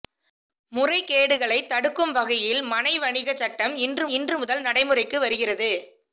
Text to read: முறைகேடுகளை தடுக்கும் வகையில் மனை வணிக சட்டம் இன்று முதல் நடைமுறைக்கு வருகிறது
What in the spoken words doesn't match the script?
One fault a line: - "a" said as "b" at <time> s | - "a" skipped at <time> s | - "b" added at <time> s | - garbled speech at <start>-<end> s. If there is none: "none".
- "இன்று" added at 4.1 s